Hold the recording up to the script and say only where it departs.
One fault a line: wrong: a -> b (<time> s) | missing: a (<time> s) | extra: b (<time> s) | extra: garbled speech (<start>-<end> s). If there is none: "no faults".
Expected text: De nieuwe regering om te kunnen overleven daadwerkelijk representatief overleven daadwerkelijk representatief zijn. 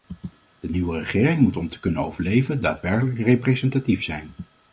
extra: moet (1.4 s)
missing: overleven daadwerkelijk representatief (4.0 s)